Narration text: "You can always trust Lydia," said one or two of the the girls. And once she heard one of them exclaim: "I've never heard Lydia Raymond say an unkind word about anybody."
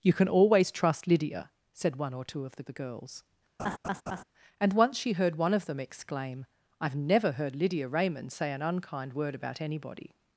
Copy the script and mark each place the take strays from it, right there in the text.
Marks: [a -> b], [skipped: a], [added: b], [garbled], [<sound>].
"You can always trust Lydia," said one or two of the the girls. [laugh] And once she heard one of them exclaim: "I've never heard Lydia Raymond say an unkind word about anybody."